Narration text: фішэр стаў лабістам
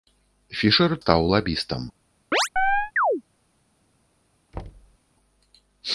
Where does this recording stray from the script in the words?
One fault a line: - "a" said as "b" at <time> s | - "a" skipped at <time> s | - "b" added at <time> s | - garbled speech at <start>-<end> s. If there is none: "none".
none